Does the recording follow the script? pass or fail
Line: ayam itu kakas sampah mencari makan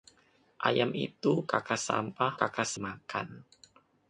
fail